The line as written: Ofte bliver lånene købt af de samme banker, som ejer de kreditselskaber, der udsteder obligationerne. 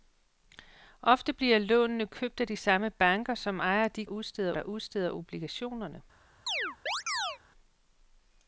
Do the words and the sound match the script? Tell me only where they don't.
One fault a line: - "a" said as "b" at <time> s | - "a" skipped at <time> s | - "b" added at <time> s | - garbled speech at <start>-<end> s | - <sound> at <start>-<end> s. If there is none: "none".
- "kreditselskaber" said as "udsteder" at 4.1 s
- chirp at 6.5-7.4 s